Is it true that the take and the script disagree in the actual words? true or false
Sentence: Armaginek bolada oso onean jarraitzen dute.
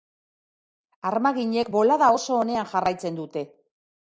false